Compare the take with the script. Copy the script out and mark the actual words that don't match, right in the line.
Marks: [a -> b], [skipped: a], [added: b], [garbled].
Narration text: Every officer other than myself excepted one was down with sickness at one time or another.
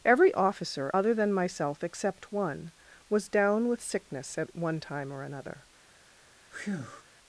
Every officer other than myself [excepted -> except] one was down with sickness at one time or another.